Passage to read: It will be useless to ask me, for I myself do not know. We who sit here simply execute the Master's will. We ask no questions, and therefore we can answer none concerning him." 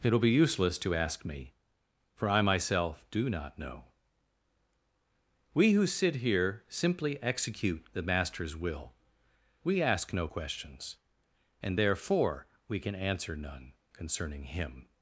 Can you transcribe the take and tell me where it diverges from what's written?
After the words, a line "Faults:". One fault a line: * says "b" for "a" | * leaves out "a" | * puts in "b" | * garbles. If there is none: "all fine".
It will be useless to ask me, for I myself do not know. We who sit here simply execute the Master's will. We ask no questions, and therefore we can answer none concerning him."
Faults:
all fine